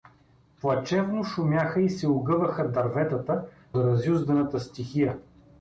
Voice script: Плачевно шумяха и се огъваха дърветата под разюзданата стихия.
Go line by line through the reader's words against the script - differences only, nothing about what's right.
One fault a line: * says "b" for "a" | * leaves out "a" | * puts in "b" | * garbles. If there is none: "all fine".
* leaves out "под"